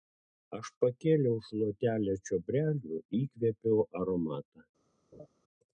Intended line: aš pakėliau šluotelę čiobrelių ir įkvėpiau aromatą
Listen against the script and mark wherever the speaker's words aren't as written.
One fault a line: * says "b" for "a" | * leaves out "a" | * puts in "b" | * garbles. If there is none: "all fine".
* leaves out "ir"